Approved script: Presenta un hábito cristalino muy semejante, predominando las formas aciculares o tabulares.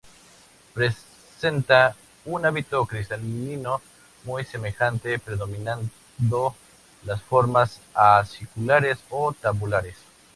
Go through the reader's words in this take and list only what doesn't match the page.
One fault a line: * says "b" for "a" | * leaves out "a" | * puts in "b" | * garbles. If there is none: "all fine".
all fine